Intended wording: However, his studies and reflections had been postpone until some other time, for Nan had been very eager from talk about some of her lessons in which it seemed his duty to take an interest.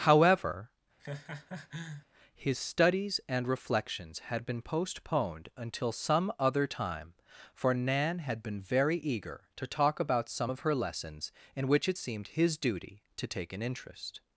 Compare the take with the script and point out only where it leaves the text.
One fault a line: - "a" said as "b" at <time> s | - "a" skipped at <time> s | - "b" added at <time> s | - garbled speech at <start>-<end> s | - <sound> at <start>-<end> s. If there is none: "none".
- laugh at 1.0-2.1 s
- "postpone" said as "postponed" at 4.6 s
- "from" said as "to" at 9.5 s